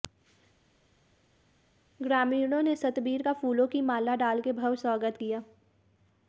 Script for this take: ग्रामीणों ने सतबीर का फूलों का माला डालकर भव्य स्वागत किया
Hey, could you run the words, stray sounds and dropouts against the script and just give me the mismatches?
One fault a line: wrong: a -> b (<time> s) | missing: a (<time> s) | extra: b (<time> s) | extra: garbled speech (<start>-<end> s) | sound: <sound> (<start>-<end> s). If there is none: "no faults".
wrong: का -> की (3.7 s)